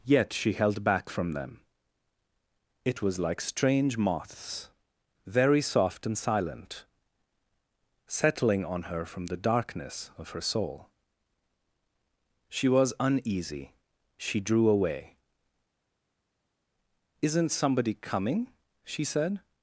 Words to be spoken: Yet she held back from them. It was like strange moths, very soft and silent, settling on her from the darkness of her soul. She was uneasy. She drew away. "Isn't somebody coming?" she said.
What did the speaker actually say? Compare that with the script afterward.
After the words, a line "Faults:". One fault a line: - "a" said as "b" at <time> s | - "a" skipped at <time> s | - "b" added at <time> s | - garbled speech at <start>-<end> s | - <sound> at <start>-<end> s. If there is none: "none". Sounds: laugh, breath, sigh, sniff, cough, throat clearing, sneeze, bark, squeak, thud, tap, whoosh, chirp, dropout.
Yet she held back from them. It was like strange moths, very soft and silent, settling on her from the darkness of her soul. She was uneasy. She drew away. "Isn't somebody coming?" she said.
Faults:
none